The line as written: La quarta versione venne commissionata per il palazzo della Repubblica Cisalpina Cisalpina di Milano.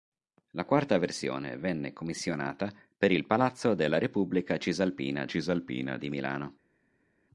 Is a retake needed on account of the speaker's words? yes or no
no